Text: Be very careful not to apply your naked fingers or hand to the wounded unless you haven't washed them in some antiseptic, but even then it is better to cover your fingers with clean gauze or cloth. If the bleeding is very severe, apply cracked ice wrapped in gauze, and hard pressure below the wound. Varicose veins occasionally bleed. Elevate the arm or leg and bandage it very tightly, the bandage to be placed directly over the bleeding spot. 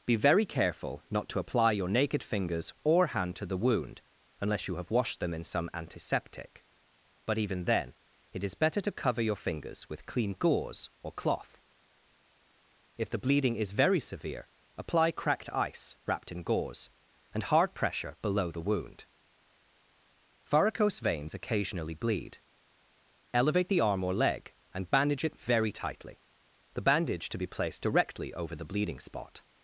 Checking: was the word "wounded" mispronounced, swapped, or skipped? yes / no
yes